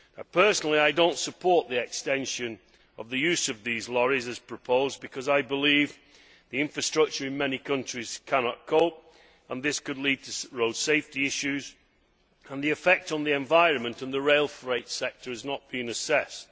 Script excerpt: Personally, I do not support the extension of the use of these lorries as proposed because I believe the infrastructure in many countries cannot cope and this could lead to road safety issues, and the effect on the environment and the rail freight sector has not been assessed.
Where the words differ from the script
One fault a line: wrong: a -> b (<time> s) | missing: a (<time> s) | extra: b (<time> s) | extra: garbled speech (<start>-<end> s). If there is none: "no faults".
no faults